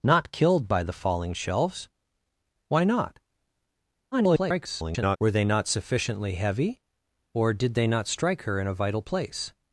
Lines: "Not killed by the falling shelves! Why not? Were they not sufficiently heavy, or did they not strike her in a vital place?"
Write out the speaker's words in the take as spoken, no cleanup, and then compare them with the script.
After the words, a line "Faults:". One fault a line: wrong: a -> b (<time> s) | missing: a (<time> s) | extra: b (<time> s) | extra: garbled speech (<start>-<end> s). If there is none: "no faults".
"Not killed by the falling shelves! Why not? [garbled] Were they not sufficiently heavy, or did they not strike her in a vital place?"
Faults:
extra: garbled speech (4.1-5.2 s)